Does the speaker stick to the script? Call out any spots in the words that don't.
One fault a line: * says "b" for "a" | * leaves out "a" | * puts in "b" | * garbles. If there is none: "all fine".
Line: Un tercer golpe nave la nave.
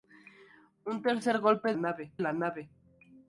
all fine